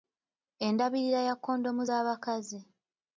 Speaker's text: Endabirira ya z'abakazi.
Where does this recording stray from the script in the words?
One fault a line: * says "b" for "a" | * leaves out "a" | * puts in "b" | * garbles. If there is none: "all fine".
* puts in "kondomu"